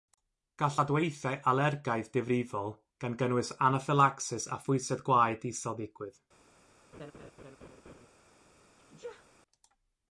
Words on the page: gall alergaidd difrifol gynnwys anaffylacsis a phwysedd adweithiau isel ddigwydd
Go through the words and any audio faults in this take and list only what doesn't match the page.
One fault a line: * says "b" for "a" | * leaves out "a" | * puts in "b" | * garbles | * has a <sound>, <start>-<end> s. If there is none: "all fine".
* puts in "adweithiau"
* puts in "gan"
* says "gwaed" for "adweithiau"
* has a laugh, 6.9-8.1 s
* has a sneeze, 8.8-9.3 s